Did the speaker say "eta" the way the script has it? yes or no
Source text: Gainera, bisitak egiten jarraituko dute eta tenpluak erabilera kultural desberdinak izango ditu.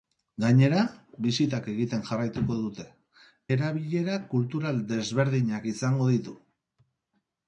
no